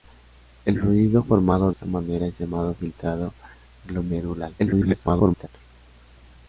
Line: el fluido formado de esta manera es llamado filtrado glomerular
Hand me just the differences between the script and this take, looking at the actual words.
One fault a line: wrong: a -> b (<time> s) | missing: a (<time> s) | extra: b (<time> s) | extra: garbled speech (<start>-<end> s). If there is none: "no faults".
missing: de (1.7 s)
extra: garbled speech (4.6-5.5 s)